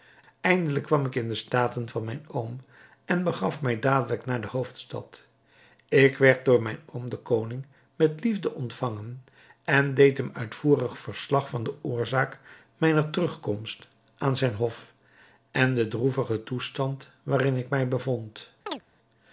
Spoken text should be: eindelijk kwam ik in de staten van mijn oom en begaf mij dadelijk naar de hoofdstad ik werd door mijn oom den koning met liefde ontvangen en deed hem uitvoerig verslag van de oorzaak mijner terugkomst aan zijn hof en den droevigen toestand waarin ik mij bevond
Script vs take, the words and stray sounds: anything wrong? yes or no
yes